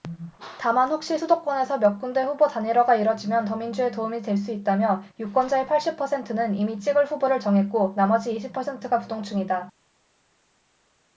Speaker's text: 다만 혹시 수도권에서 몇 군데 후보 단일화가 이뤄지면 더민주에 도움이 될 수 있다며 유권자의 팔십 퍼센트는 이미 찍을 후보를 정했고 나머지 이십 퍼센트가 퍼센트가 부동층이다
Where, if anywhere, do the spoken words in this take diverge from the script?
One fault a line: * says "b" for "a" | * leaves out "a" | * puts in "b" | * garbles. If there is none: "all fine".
* leaves out "퍼센트가"